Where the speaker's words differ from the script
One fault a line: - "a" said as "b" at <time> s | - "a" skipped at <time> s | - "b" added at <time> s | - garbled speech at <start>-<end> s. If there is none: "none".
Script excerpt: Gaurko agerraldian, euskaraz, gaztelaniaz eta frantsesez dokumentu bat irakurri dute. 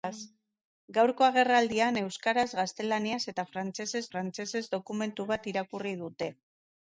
- "frantsesez" added at 4.1 s